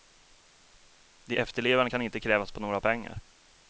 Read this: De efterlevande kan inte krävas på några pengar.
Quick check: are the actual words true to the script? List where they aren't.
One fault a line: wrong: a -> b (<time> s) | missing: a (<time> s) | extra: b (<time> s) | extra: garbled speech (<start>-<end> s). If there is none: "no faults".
no faults